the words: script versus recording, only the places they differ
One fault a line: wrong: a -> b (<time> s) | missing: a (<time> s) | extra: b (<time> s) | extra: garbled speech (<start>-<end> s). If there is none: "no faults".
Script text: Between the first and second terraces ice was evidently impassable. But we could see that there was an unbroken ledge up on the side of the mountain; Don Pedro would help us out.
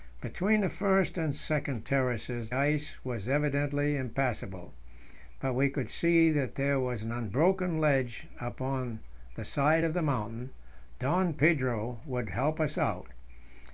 no faults